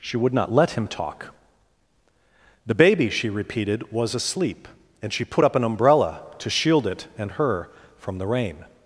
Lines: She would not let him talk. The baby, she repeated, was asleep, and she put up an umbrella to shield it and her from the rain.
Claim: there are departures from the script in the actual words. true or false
false